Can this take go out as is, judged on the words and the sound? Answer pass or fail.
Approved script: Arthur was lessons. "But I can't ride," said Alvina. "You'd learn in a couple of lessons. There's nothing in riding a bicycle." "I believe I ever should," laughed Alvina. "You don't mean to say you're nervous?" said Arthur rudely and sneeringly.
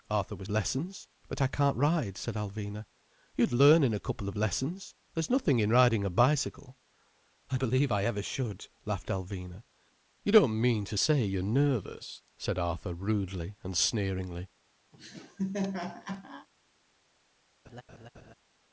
fail